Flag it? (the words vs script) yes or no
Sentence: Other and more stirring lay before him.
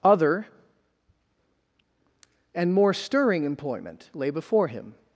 yes